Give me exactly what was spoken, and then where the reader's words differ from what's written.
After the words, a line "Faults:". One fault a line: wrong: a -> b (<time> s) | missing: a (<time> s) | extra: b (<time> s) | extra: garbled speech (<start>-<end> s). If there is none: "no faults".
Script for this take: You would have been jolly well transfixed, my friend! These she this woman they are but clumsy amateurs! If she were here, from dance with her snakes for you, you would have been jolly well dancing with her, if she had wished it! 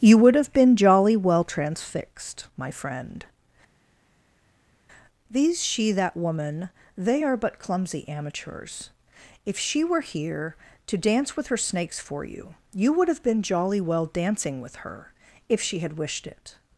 You would have been jolly well transfixed, my friend! These she that woman they are but clumsy amateurs! If she were here, to dance with her snakes for you, you would have been jolly well dancing with her, if she had wished it!
Faults:
wrong: this -> that (5.9 s)
wrong: from -> to (10.9 s)